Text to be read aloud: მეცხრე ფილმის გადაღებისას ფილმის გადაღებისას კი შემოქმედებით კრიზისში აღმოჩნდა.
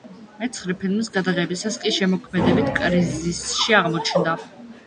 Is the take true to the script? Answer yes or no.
no